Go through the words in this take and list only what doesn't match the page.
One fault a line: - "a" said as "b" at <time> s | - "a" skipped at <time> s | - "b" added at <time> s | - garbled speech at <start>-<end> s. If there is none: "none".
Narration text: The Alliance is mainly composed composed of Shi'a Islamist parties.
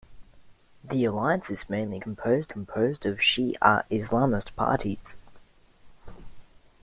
none